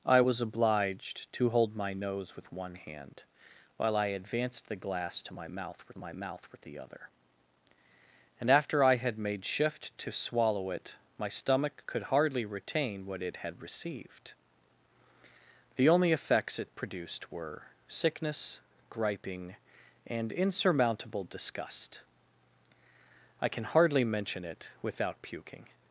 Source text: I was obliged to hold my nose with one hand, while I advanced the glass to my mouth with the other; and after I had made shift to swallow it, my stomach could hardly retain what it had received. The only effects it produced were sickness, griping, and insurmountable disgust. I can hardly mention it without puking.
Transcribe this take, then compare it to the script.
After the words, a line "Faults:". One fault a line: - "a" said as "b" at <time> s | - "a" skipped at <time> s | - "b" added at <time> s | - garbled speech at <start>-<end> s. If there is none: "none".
I was obliged to hold my nose with one hand, while I advanced the glass to my mouth with my mouth with the other; and after I had made shift to swallow it, my stomach could hardly retain what it had received. The only effects it produced were sickness, griping, and insurmountable disgust. I can hardly mention it without puking.
Faults:
- "my mouth with" added at 6.0 s